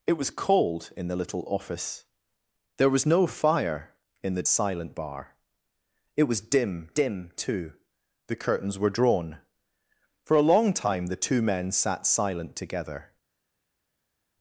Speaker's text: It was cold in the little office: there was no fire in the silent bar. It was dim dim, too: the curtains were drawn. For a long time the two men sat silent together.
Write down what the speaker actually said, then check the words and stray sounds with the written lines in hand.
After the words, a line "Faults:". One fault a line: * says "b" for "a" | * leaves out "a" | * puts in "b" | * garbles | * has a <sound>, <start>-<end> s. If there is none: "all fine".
It was cold in the little office: there was no fire in the silent bar. It was dim dim, too: the curtains were drawn. For a long time the two men sat silent together.
Faults:
all fine